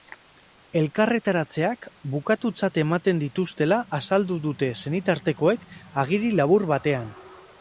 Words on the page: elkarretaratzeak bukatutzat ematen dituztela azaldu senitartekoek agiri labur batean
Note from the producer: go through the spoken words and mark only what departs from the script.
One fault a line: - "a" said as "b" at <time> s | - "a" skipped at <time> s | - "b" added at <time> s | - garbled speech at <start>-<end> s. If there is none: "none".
- "dute" added at 4.5 s